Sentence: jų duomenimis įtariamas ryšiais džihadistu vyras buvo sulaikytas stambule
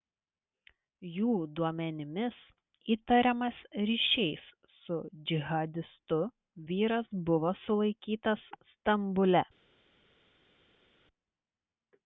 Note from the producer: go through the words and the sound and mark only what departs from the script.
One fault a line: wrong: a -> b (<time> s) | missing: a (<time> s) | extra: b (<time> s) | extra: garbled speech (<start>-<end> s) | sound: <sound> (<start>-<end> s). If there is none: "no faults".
extra: su (4.8 s)